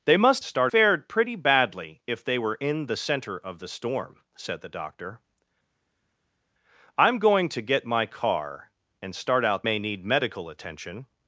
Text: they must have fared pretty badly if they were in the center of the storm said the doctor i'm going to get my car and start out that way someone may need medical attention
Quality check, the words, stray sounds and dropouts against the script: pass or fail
fail